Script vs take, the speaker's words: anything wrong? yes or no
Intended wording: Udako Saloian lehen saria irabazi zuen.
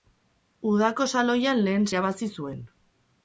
yes